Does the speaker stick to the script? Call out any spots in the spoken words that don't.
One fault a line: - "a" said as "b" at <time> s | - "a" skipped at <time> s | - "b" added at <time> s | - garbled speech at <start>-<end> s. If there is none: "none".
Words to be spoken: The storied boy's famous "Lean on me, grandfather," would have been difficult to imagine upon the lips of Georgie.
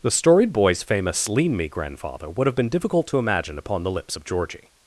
- "on" skipped at 1.6 s